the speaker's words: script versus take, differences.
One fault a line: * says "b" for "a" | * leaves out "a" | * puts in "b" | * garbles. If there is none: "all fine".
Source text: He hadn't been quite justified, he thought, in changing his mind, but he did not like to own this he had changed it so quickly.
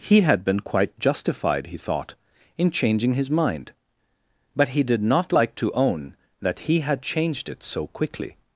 * says "had" for "hadn't"
* says "that" for "this"